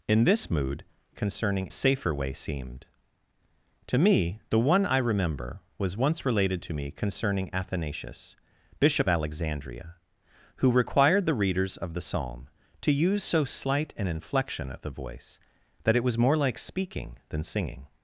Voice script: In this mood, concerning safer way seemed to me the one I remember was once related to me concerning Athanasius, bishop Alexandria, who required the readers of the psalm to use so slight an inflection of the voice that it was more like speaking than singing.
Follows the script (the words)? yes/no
yes